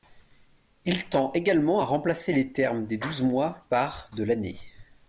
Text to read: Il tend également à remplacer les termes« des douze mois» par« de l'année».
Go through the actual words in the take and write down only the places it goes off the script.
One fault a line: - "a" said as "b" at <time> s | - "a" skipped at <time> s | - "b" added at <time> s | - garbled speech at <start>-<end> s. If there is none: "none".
none